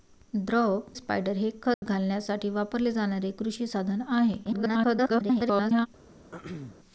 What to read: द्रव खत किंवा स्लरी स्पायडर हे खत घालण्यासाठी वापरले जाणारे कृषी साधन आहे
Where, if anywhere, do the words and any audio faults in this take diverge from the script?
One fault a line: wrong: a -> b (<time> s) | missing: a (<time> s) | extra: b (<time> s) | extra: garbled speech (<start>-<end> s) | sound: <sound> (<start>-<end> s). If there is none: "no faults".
missing: खत किंवा स्लरी (0.8 s)
sound: dropout (1.7-1.8 s)
extra: garbled speech (4.4-5.9 s)
sound: throat clearing (6.3-6.8 s)